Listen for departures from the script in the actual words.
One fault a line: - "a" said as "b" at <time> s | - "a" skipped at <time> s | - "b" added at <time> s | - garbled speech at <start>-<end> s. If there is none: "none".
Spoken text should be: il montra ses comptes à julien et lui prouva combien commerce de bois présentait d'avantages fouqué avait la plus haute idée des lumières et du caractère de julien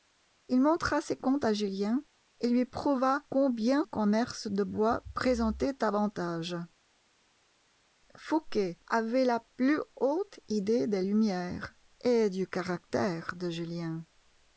none